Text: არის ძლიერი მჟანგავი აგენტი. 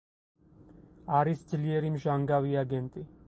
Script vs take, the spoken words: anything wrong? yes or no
no